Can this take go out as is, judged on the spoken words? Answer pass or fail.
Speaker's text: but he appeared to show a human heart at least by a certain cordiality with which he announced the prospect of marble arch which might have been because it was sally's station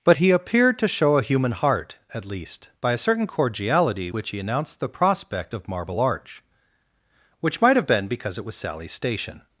fail